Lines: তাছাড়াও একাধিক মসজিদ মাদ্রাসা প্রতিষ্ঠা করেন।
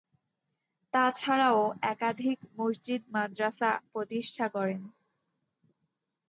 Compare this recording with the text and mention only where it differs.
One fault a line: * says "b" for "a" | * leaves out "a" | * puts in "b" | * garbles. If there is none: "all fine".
all fine